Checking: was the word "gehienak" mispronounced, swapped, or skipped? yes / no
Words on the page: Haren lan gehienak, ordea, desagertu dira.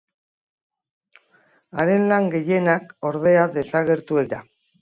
no